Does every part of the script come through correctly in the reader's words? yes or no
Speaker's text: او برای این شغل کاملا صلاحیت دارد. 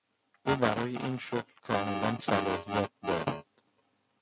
yes